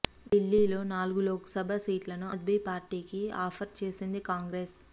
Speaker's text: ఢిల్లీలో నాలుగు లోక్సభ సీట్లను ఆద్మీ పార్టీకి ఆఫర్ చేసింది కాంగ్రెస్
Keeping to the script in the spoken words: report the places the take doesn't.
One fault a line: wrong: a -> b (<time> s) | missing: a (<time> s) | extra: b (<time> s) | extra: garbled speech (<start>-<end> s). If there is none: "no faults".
no faults